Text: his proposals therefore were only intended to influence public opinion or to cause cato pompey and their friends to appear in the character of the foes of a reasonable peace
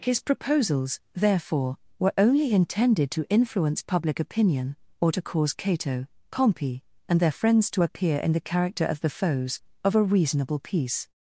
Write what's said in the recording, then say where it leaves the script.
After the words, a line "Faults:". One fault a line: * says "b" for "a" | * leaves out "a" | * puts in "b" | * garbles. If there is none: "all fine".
his proposals therefore were only intended to influence public opinion or to cause cato pompey and their friends to appear in the character of the foes of a reasonable peace
Faults:
all fine